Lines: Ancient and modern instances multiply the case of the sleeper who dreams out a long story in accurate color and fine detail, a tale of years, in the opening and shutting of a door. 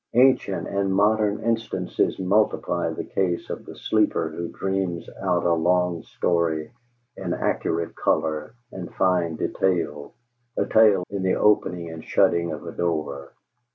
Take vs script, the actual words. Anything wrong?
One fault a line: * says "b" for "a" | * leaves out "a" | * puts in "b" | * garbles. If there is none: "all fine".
* leaves out "of years"